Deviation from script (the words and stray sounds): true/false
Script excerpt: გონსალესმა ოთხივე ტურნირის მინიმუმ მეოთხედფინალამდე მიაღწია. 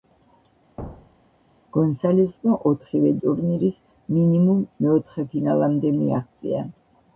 true